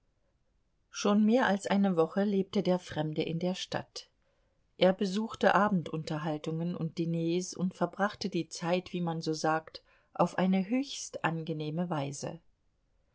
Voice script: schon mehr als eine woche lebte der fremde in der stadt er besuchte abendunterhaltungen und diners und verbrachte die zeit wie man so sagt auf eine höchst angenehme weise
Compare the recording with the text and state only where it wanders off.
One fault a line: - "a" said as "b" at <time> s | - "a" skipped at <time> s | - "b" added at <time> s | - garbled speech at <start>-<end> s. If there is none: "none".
none